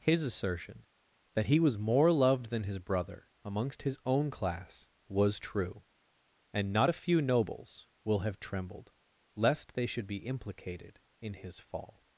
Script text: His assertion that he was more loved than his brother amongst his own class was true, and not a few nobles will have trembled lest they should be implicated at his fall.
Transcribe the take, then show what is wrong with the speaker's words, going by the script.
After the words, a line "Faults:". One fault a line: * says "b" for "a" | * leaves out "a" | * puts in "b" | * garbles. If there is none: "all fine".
His assertion that he was more loved than his brother amongst his own class was true, and not a few nobles will have trembled lest they should be implicated in his fall.
Faults:
* says "in" for "at"